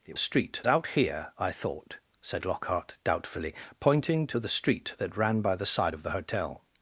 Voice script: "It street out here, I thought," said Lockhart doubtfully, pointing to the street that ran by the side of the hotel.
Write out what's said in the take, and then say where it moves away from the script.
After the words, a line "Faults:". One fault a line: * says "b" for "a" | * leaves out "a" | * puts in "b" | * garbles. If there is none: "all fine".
"It street out here, I thought," said Lockhart doubtfully, pointing to the street that ran by the side of the hotel.
Faults:
all fine